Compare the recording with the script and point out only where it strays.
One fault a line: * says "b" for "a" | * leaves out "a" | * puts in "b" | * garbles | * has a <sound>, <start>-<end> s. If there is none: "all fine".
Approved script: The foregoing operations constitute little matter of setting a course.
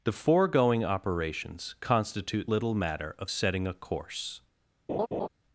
* has a laugh, 4.9-5.3 s